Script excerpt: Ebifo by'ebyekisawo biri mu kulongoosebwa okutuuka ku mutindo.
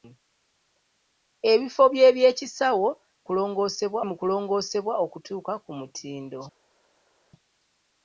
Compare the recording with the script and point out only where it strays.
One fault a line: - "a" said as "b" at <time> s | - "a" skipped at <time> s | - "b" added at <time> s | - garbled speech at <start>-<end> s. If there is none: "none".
- "biri" said as "kulongoosebwa" at 3.3 s